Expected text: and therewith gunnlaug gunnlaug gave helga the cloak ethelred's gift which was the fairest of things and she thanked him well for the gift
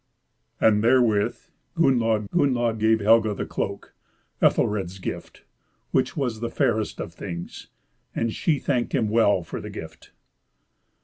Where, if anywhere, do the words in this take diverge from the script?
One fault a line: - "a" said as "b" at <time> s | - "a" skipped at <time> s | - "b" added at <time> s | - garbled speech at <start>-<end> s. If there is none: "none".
none